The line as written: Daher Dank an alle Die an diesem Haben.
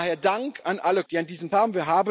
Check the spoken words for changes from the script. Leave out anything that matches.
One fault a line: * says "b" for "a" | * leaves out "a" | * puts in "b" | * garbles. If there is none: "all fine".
all fine